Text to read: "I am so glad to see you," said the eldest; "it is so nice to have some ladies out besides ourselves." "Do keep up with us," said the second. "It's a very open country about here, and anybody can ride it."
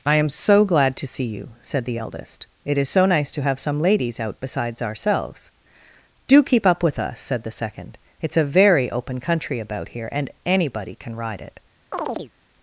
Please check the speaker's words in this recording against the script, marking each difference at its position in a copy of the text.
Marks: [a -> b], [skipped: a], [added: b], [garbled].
"I am so glad to see you," said the eldest; "it is so nice to have some ladies out besides ourselves." "Do keep up with us," said the second. "It's a very open country about here, and anybody can ride it."